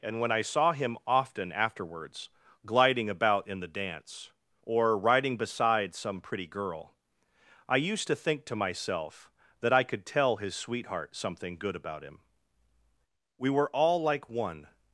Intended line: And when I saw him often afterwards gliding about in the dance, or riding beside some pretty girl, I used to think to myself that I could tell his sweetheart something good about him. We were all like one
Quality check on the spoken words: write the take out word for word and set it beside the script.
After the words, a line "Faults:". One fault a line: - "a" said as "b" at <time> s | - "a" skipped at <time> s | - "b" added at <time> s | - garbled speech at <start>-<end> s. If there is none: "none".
And when I saw him often afterwards gliding about in the dance, or riding beside some pretty girl, I used to think to myself that I could tell his sweetheart something good about him. We were all like one
Faults:
none